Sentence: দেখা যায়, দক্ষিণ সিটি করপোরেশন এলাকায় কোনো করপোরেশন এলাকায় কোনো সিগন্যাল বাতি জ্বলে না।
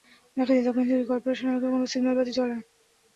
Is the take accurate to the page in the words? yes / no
no